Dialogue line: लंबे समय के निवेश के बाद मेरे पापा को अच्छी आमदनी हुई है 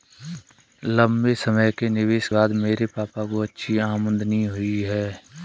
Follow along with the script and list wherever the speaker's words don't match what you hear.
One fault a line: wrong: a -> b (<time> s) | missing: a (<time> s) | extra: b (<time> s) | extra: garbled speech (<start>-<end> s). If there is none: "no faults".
missing: के (2.3 s)